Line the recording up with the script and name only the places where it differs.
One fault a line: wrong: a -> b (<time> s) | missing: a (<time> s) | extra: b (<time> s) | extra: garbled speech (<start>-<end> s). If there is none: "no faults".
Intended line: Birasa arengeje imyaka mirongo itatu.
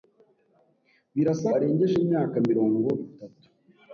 no faults